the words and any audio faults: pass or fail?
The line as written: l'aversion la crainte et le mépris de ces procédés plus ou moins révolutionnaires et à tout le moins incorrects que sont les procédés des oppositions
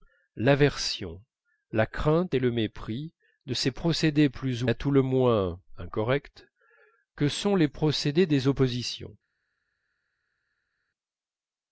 fail